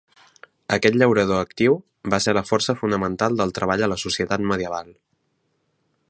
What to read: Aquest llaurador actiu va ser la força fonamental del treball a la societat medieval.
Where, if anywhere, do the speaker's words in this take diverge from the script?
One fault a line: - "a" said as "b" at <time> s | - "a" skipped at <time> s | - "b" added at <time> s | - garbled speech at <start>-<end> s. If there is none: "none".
none